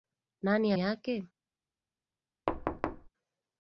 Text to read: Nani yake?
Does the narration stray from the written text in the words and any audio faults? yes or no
yes